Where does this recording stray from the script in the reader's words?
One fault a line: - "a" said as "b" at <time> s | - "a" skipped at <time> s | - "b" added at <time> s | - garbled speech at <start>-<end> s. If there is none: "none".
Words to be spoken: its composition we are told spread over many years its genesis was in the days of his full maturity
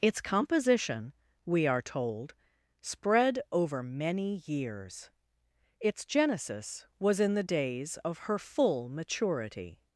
- "his" said as "her" at 8.2 s